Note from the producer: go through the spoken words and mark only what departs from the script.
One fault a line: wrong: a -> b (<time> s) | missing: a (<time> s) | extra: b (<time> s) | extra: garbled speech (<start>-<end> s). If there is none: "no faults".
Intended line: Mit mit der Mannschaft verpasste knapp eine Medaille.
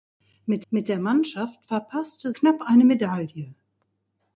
no faults